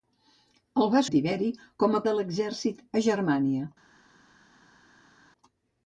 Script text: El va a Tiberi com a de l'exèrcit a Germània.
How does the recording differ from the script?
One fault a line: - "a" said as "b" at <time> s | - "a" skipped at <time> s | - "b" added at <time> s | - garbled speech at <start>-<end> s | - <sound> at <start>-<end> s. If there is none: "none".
none